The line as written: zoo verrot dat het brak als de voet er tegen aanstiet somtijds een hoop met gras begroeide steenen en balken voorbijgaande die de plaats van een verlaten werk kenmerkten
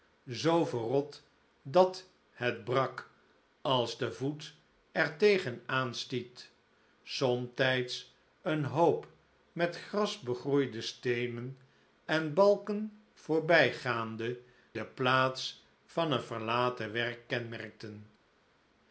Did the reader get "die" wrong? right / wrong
wrong